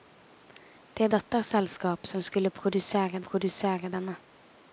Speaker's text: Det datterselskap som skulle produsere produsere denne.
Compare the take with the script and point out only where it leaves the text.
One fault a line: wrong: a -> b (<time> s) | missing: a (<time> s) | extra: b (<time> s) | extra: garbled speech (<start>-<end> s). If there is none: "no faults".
no faults